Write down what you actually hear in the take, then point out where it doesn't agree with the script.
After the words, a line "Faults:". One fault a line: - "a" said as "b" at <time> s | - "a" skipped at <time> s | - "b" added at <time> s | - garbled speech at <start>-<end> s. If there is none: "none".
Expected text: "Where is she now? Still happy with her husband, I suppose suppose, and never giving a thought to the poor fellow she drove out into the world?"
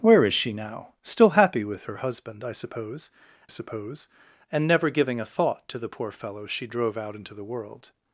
"Where is she now? Still happy with her husband, I suppose suppose, and never giving a thought to the poor fellow she drove out into the world?"
Faults:
none